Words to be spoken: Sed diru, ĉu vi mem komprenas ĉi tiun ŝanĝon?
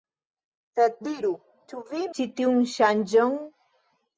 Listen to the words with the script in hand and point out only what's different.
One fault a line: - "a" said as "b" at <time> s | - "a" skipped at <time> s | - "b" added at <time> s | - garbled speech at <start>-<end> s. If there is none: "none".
- "mem komprenas" skipped at 2.1 s